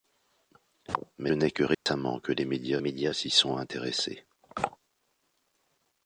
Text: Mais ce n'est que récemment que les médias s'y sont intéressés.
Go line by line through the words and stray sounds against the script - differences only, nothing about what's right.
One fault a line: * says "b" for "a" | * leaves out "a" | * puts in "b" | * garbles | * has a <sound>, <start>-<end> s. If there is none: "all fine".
* leaves out "ce"
* has a dropout, 1.7-1.9 s
* puts in "médias"